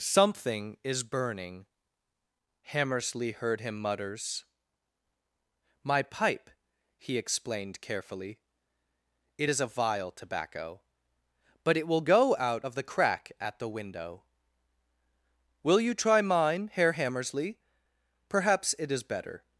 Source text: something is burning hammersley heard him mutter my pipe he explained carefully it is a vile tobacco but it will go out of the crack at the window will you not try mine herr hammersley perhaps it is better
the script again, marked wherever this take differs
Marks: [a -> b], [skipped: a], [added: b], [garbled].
something is burning hammersley heard him [mutter -> mutters] my pipe he explained carefully it is a vile tobacco but it will go out of the crack at the window will you [skipped: not] try mine herr hammersley perhaps it is better